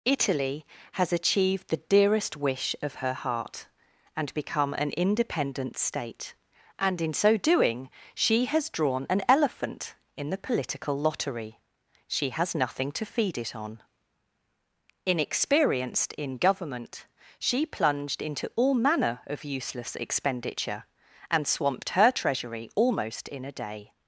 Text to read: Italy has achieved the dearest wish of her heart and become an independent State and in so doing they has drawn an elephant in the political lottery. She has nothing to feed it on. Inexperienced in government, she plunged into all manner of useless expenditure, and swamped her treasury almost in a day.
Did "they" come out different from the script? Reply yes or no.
yes